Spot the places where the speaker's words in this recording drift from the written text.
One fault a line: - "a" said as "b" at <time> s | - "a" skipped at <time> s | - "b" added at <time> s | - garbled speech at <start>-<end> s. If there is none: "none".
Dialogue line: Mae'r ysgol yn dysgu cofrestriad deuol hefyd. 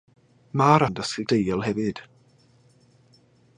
- "ysgol" skipped at 0.8 s
- "cofrestriad" skipped at 1.2 s